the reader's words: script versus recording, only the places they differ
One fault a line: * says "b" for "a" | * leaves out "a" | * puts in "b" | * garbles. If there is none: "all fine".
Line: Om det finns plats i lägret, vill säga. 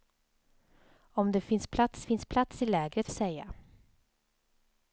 * puts in "finns plats"
* leaves out "vill"